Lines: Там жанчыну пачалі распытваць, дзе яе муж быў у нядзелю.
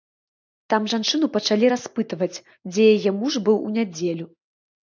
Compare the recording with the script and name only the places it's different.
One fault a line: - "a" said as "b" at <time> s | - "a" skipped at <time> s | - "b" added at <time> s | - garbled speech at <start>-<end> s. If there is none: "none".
none